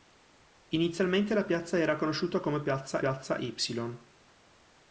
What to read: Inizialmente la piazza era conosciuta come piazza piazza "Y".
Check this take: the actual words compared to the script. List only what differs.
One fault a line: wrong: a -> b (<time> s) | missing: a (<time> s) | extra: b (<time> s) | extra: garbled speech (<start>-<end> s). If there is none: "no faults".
no faults